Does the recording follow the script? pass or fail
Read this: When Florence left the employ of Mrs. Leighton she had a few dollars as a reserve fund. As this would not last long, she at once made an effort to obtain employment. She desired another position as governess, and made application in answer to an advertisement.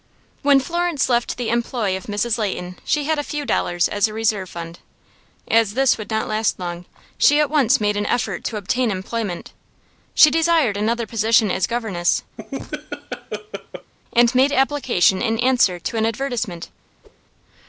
pass